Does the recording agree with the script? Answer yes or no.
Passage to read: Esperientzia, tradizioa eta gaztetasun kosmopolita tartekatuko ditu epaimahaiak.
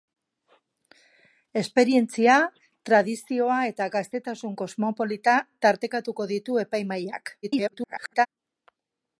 no